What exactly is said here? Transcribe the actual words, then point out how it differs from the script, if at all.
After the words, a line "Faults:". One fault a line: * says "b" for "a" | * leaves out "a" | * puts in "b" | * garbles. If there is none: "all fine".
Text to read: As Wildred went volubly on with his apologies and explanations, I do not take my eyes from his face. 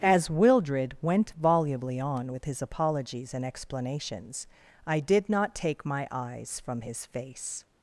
As Wildred went volubly on with his apologies and explanations, I did not take my eyes from his face.
Faults:
* says "did" for "do"